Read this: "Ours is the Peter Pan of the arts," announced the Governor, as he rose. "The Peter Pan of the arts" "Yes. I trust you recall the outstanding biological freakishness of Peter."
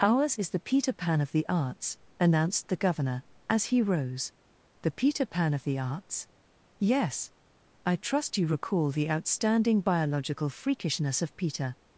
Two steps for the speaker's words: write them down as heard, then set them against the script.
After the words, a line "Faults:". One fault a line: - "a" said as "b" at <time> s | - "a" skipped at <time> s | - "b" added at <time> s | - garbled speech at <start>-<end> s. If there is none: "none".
"Ours is the Peter Pan of the arts," announced the Governor, as he rose. "The Peter Pan of the arts" "Yes. I trust you recall the outstanding biological freakishness of Peter."
Faults:
none